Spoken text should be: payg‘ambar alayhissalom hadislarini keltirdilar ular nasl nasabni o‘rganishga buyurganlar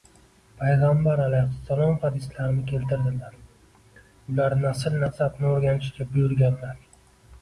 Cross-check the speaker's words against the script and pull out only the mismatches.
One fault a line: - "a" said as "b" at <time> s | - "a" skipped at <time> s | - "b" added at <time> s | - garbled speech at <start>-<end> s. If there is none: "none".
none